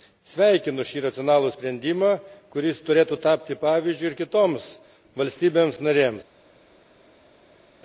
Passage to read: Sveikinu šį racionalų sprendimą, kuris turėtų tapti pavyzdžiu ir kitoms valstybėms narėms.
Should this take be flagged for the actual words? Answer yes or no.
no